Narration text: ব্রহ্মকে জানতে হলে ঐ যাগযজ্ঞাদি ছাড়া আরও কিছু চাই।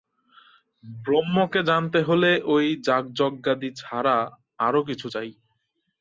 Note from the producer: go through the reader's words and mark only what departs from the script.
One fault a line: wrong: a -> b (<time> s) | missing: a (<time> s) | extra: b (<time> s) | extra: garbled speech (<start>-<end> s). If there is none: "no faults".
no faults